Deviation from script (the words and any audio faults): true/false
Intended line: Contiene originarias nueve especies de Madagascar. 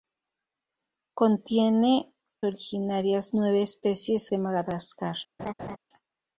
true